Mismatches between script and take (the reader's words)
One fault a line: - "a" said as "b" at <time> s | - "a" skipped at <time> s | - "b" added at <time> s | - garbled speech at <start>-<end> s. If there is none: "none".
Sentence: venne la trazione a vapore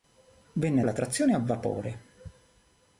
none